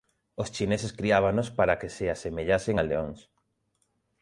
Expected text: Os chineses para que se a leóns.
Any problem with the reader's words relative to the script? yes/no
yes